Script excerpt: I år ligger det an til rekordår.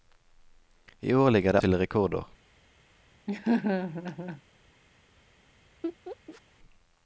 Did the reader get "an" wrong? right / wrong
wrong